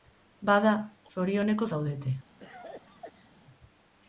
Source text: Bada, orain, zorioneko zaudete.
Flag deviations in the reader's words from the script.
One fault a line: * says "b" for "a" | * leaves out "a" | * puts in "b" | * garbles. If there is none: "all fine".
* leaves out "orain"